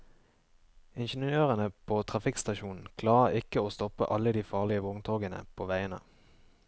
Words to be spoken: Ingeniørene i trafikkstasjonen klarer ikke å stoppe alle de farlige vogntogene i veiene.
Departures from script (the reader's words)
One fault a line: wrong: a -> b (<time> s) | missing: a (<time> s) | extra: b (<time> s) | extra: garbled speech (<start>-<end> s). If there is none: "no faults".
wrong: i -> på (1.9 s)
wrong: i -> på (5.5 s)